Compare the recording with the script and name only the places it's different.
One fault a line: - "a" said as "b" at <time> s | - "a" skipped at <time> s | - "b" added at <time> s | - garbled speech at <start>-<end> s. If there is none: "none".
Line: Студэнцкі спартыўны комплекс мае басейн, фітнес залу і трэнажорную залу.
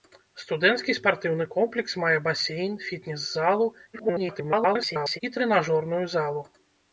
- garbled speech at 3.9-5.2 s